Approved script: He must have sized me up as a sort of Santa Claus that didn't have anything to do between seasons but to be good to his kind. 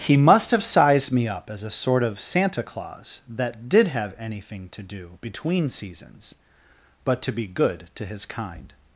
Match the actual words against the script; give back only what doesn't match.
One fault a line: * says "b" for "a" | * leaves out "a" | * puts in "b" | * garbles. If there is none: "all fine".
* says "did" for "didn't"